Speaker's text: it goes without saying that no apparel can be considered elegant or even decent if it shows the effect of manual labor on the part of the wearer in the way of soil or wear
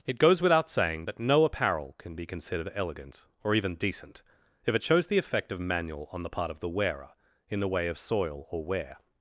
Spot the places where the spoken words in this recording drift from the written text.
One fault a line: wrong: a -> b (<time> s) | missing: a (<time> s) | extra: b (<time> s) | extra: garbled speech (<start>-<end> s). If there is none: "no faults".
missing: labor (6.1 s)